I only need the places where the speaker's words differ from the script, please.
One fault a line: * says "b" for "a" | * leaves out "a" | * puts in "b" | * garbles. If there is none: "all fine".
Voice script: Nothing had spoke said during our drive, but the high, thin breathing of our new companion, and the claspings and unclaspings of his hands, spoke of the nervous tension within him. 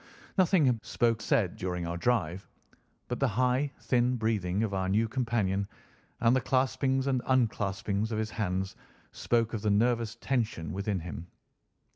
all fine